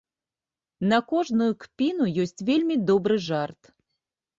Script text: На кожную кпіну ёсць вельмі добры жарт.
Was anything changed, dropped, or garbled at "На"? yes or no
no